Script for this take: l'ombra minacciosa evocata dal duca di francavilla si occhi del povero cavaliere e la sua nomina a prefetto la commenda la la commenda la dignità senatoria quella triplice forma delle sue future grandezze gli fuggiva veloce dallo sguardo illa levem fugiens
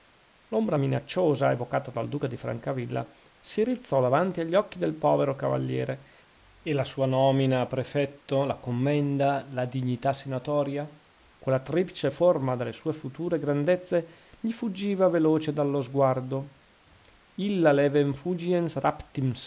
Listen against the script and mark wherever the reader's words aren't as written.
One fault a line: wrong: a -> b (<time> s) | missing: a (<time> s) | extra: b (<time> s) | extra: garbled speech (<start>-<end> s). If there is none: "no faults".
extra: rizzò davanti agli (3.6 s)
missing: la commenda la (9.7 s)